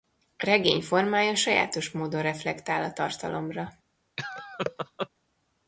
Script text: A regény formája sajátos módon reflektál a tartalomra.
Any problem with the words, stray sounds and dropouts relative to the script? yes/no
yes